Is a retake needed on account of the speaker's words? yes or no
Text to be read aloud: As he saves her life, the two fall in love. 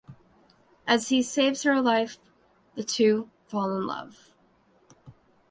no